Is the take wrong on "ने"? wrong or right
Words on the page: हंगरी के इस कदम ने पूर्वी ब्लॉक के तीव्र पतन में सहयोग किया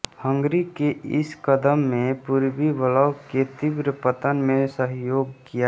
right